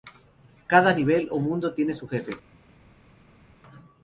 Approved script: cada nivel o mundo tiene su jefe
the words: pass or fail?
pass